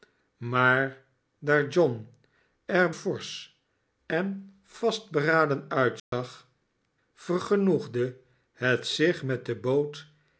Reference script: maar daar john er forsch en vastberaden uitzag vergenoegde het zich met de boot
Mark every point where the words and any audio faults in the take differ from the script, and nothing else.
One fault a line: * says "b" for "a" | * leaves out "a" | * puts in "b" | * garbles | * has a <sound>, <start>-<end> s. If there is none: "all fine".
* has a dropout, 6.0-6.1 s